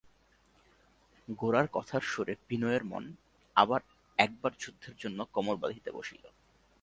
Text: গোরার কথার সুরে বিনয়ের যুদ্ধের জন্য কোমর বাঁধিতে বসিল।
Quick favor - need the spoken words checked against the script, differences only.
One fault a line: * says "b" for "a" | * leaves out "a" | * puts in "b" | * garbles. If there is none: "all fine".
* puts in "মন আবার একবার"